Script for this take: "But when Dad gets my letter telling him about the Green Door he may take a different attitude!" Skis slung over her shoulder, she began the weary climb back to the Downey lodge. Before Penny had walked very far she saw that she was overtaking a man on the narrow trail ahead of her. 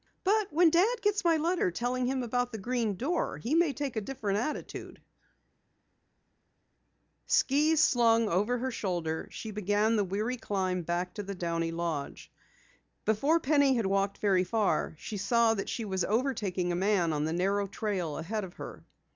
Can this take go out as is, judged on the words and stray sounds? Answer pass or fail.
pass